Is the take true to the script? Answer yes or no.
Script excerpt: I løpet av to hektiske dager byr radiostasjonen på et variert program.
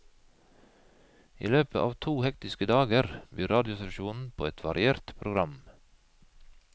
yes